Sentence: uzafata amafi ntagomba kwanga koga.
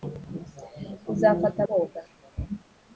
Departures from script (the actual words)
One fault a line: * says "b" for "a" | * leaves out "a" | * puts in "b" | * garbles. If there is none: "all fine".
* leaves out "amafi ntagomba kwanga"